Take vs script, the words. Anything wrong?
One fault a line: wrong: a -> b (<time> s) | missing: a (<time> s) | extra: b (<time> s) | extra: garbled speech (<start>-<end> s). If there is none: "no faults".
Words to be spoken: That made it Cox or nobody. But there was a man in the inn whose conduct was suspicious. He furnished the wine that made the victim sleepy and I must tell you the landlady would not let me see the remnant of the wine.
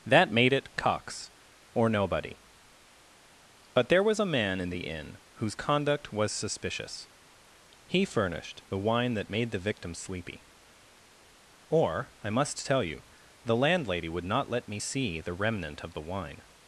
wrong: and -> or (11.7 s)